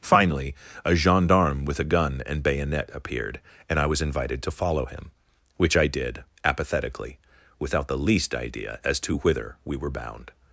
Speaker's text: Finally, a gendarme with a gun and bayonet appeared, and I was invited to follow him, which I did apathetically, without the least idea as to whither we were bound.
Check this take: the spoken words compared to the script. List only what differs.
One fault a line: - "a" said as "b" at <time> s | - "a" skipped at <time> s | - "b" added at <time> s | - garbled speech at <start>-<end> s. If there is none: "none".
none